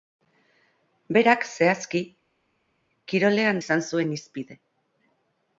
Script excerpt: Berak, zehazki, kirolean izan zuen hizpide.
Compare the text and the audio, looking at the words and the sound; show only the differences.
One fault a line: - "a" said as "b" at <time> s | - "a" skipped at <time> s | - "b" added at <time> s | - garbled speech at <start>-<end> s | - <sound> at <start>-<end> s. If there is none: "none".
none